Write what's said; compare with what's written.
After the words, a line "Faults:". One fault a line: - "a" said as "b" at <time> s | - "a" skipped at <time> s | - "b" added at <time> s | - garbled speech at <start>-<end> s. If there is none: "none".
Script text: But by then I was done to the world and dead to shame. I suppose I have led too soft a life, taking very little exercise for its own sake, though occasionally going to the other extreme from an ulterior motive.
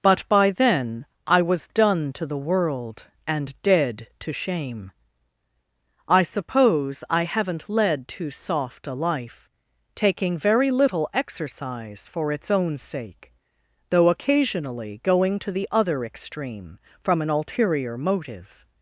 But by then I was done to the world and dead to shame. I suppose I haven't led too soft a life, taking very little exercise for its own sake, though occasionally going to the other extreme from an ulterior motive.
Faults:
- "have" said as "haven't" at 7.2 s